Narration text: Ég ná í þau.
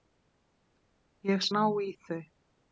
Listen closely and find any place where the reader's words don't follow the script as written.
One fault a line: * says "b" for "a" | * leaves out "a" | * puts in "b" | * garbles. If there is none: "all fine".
all fine